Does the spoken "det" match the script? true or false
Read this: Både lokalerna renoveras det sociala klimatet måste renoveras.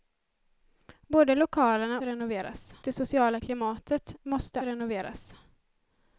true